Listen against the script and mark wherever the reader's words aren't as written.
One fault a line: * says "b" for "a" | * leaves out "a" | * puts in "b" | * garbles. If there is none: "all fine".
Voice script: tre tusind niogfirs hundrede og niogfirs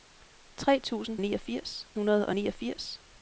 all fine